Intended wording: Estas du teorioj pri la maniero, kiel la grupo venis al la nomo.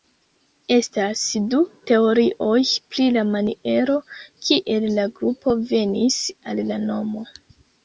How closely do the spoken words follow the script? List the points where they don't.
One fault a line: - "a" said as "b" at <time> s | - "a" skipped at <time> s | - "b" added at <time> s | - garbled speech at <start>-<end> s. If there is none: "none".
none